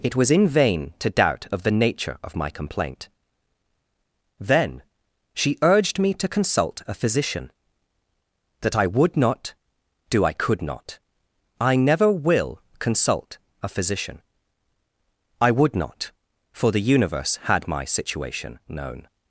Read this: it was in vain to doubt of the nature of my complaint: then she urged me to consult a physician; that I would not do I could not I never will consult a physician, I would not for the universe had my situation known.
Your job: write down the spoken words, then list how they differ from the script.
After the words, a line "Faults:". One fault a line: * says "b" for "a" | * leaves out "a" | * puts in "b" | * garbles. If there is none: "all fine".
it was in vain to doubt of the nature of my complaint: then she urged me to consult a physician; that I would not do I could not I never will consult a physician, I would not for the universe had my situation known.
Faults:
all fine